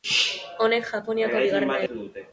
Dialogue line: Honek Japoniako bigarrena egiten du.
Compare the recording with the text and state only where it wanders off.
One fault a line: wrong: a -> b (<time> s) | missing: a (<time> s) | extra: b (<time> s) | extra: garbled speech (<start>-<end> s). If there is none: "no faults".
missing: egiten (1.8 s)